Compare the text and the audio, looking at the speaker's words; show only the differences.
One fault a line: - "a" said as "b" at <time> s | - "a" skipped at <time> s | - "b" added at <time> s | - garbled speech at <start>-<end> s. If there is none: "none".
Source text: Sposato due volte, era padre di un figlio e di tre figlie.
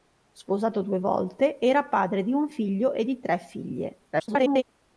- garbled speech at 4.1-4.6 s